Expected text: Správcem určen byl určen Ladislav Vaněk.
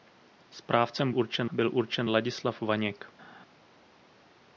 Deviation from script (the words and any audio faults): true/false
false